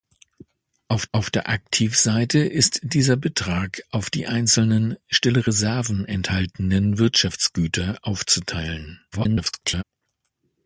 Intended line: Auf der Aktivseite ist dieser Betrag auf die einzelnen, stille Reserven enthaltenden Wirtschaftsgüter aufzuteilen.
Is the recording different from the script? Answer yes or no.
yes